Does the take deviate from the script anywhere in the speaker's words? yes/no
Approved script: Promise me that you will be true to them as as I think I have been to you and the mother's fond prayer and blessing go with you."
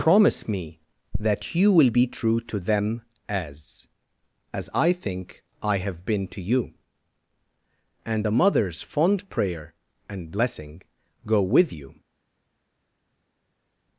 no